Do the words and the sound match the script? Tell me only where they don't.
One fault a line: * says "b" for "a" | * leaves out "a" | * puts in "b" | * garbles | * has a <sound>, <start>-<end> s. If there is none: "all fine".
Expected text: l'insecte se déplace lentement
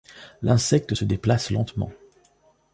all fine